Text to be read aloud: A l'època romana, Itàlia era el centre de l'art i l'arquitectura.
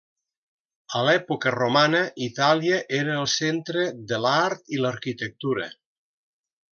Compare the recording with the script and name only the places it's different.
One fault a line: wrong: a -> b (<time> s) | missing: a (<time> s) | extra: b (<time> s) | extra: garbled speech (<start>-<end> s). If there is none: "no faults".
no faults